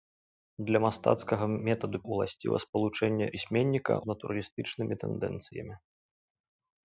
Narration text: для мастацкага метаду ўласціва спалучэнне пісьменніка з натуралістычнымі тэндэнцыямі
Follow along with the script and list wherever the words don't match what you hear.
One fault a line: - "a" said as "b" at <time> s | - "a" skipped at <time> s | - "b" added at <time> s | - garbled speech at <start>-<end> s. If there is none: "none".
none